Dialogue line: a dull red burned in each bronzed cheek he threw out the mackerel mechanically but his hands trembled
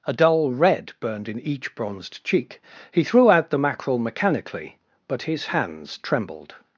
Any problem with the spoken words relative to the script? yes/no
no